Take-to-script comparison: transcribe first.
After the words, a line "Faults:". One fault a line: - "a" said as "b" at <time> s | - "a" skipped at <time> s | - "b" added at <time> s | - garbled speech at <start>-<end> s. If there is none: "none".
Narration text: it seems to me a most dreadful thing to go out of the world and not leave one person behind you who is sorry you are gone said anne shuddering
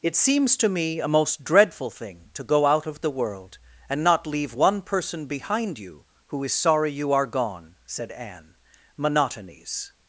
it seems to me a most dreadful thing to go out of the world and not leave one person behind you who is sorry you are gone said anne monotonies
Faults:
- "shuddering" said as "monotonies" at 9.0 s